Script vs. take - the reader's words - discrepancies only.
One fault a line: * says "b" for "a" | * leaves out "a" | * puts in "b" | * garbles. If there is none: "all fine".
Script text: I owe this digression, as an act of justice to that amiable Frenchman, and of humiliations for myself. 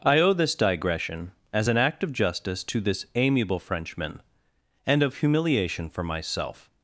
* says "this" for "that"
* says "humiliation" for "humiliations"